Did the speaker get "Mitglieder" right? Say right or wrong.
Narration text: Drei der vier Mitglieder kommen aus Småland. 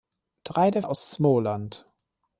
wrong